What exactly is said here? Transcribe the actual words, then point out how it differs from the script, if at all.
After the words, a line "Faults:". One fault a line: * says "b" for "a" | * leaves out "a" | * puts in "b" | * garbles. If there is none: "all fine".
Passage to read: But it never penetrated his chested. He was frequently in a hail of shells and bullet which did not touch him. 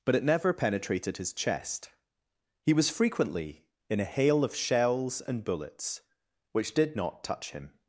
But it never penetrated his chest. He was frequently in a hail of shells and bullets which did not touch him.
Faults:
* says "chest" for "chested"
* says "bullets" for "bullet"